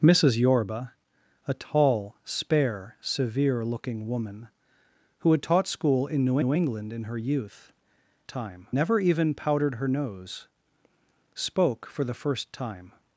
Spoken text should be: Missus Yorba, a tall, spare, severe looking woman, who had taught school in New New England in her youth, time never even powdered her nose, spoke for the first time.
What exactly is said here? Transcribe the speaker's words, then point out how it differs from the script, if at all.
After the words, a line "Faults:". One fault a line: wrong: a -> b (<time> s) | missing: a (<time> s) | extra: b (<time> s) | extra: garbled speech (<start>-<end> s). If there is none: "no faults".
Missus Yorba, a tall, spare, severe looking woman, who had taught school in New New England in her youth, time never even powdered her nose, spoke for the first time.
Faults:
no faults